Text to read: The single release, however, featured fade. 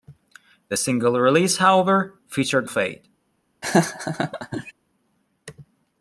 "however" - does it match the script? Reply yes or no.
yes